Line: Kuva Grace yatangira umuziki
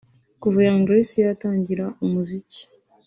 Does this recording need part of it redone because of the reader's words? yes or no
yes